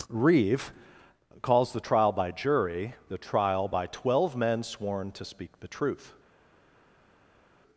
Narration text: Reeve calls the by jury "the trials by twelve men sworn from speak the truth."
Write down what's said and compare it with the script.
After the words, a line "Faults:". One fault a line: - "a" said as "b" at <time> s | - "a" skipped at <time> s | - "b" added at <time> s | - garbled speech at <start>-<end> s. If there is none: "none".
Reeve calls the trial by jury "the trial by twelve men sworn to speak the truth."
Faults:
- "trial" added at 1.8 s
- "trials" said as "trial" at 3.2 s
- "from" said as "to" at 5.1 s